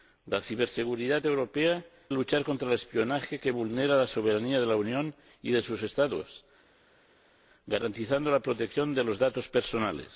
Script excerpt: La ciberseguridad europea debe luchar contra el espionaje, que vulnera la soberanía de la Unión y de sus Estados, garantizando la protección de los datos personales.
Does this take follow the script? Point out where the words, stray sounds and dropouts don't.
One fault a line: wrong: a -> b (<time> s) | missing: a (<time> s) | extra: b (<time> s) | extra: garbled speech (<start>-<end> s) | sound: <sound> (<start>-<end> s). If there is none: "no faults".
missing: debe (1.8 s)